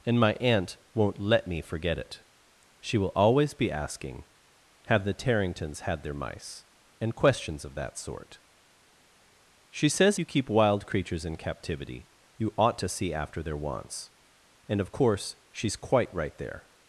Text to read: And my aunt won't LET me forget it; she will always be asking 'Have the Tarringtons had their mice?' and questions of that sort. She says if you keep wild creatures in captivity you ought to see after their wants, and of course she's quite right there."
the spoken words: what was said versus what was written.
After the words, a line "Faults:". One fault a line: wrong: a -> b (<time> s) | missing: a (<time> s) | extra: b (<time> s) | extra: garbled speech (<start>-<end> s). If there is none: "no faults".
And my aunt won't LET me forget it; she will always be asking 'Have the Tarringtons had their mice?' and questions of that sort. She says you keep wild creatures in captivity you ought to see after their wants, and of course she's quite right there."
Faults:
missing: if (10.2 s)